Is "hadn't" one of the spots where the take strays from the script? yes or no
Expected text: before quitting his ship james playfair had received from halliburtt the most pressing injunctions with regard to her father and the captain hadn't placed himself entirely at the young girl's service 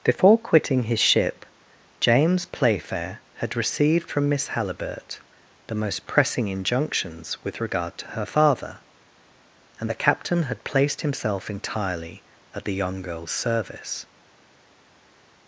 yes